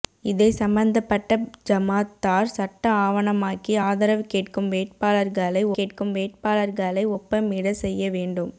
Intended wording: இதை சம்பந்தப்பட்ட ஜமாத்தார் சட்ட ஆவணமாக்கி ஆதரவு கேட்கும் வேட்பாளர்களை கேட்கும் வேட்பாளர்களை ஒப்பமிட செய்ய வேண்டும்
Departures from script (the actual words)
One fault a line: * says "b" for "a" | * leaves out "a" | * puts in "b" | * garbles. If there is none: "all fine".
all fine